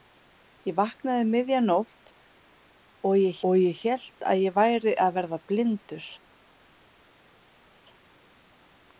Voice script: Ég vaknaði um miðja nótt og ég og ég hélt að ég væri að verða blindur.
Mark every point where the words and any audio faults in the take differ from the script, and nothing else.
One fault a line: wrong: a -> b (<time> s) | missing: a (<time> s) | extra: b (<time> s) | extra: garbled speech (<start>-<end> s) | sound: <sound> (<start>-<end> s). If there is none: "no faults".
no faults